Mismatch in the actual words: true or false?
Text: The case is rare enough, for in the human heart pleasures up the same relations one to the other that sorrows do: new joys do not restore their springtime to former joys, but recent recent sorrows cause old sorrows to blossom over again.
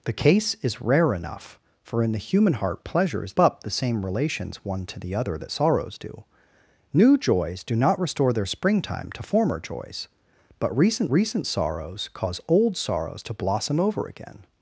false